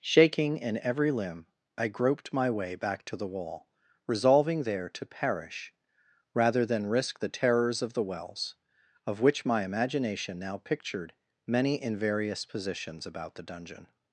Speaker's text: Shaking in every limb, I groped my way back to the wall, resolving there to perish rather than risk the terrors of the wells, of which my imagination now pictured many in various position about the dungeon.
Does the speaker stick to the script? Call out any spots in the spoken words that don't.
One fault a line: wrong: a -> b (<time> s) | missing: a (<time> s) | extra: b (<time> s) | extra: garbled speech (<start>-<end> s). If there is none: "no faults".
wrong: position -> positions (12.4 s)